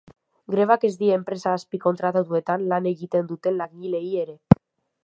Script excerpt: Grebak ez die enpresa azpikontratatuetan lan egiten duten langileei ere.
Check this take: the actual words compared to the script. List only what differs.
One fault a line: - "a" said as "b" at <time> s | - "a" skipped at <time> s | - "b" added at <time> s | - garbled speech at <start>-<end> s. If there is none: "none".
none